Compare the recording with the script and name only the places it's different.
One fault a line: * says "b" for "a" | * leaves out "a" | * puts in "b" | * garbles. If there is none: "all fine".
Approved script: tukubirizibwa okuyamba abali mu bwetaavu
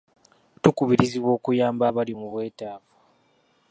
all fine